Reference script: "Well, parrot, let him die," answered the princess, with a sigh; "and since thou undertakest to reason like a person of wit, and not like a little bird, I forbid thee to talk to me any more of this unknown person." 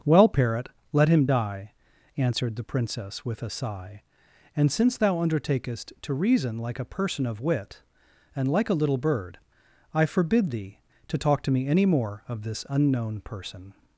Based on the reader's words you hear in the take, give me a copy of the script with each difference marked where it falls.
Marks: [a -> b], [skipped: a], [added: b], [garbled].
"Well, parrot, let him die," answered the princess, with a sigh; "and since thou undertakest to reason like a person of wit, and [skipped: not] like a little bird, I forbid thee to talk to me any more of this unknown person."